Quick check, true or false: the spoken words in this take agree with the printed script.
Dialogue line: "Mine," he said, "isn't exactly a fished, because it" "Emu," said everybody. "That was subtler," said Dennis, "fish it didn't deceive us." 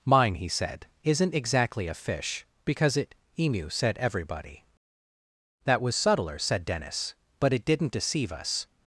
false